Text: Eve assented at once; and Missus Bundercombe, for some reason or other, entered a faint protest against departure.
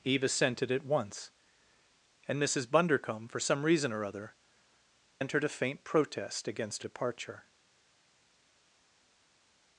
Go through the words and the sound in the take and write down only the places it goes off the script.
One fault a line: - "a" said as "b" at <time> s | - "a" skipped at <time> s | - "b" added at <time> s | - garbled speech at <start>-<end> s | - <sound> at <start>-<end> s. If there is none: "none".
none